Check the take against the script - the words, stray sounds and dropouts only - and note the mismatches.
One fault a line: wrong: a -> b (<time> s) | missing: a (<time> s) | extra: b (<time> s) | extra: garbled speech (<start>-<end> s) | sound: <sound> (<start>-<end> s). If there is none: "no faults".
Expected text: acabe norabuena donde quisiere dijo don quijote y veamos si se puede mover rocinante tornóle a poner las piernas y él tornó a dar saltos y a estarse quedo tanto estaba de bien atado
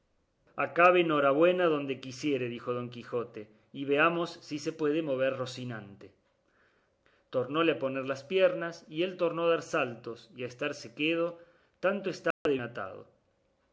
sound: dropout (12.3-12.5 s)
missing: bien (12.6 s)